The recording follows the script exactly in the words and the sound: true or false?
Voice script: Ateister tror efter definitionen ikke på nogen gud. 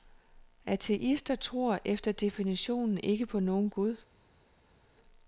true